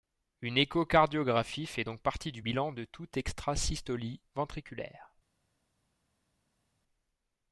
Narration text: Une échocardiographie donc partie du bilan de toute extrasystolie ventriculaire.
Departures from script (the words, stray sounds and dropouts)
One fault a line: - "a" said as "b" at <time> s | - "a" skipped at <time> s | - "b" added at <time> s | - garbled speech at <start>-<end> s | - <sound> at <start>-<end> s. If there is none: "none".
- "fait" added at 1.7 s